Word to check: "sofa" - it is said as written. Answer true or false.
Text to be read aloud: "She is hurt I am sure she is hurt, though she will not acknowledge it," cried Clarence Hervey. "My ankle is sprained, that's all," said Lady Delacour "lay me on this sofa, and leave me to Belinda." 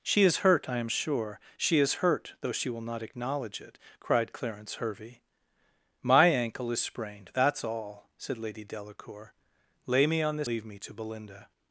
false